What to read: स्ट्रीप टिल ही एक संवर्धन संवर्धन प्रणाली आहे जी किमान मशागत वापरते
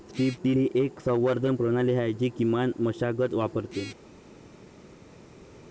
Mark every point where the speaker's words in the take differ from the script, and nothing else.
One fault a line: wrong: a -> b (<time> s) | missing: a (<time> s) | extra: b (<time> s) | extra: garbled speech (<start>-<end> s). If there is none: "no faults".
missing: संवर्धन (1.6 s)